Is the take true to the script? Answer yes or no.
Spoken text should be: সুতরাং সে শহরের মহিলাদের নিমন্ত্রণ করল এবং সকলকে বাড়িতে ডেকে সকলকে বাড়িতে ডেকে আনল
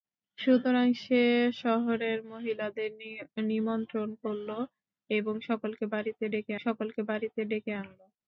yes